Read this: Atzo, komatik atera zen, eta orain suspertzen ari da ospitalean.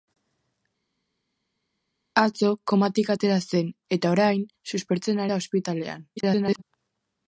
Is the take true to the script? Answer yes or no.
no